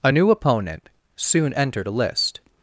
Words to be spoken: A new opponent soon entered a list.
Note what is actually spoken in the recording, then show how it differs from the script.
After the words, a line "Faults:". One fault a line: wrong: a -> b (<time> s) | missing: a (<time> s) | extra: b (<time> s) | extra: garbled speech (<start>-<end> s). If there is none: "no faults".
A new opponent soon entered a list.
Faults:
no faults